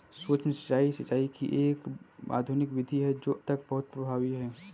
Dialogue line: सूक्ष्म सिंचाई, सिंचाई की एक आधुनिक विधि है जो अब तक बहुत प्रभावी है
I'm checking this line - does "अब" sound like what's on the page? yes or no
no